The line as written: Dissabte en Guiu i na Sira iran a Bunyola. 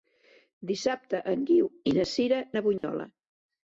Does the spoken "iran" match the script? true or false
false